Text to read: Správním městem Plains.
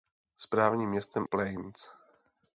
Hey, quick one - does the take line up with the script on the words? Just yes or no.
yes